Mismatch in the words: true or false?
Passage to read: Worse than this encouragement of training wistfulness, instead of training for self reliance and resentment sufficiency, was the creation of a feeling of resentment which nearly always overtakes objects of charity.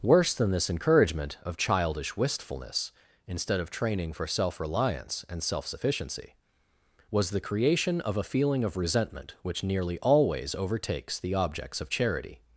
true